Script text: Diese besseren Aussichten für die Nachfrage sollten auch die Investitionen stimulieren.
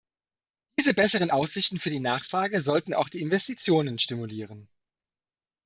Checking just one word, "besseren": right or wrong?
right